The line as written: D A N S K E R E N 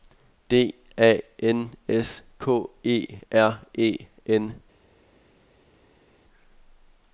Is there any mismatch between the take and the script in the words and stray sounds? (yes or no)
no